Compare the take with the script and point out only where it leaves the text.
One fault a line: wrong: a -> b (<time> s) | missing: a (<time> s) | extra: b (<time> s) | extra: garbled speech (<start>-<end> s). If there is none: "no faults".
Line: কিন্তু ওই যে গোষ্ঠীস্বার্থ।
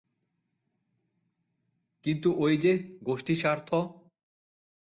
no faults